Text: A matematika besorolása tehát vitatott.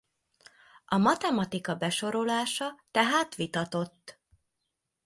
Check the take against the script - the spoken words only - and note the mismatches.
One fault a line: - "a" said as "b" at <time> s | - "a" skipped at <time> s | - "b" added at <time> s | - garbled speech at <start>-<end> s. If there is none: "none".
none